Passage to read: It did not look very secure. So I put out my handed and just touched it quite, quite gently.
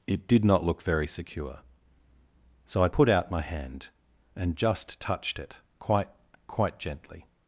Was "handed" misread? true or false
true